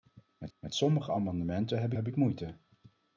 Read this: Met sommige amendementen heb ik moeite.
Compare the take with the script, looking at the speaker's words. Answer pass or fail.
fail